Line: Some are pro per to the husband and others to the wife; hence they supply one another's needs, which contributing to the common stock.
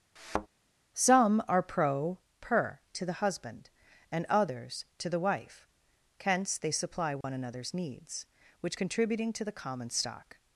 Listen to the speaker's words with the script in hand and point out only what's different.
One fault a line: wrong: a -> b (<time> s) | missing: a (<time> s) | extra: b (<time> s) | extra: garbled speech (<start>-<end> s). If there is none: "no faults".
no faults